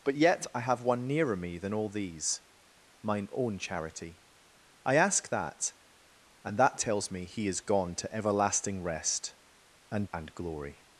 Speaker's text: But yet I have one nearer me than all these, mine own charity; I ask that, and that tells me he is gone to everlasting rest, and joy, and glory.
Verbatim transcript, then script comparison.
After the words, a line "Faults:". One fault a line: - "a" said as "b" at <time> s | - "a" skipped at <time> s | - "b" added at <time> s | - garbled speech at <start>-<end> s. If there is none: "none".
But yet I have one nearer me than all these, mine own charity; I ask that, and that tells me he is gone to everlasting rest, and and glory.
Faults:
- "joy" skipped at 10.1 s